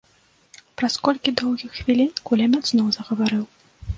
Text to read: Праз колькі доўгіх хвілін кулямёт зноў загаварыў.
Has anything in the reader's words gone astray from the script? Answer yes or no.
no